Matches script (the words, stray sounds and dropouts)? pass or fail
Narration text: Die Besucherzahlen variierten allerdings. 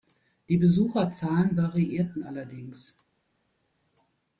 pass